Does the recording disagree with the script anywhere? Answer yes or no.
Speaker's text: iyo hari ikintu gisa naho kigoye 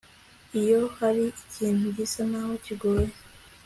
no